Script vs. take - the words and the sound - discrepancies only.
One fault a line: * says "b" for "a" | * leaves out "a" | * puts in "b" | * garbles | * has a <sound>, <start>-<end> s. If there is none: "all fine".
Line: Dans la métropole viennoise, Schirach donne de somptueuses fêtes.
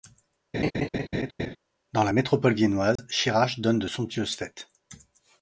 * has a laugh, 0.5-1.6 s
* has a dropout, 3.0-3.0 s